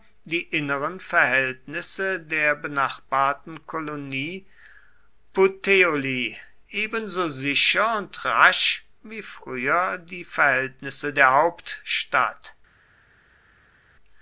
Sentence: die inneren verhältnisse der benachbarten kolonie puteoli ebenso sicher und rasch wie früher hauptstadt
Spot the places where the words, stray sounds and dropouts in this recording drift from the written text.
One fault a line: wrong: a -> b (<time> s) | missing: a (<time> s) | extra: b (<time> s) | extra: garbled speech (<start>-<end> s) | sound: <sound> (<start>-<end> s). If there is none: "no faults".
extra: die verhältnisse der (10.0 s)